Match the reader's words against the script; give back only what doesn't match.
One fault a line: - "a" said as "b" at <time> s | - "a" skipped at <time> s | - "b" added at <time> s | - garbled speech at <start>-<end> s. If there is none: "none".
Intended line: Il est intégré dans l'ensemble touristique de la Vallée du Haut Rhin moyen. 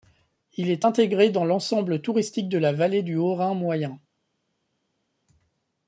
none